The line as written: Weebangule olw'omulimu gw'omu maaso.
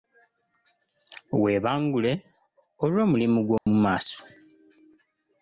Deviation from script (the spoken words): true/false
false